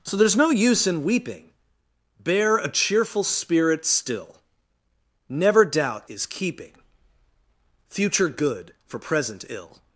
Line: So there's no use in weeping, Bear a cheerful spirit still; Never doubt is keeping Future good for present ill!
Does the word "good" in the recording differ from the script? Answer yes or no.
no